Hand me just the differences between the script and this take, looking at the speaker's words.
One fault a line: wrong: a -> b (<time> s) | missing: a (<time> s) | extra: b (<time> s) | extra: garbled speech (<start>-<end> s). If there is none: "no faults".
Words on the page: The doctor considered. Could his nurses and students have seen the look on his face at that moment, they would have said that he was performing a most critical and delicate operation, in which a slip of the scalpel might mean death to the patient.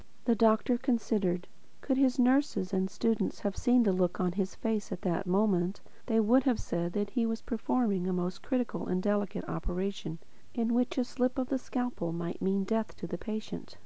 no faults